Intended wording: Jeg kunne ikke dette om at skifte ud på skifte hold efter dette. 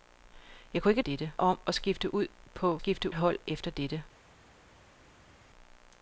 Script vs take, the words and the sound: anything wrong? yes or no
no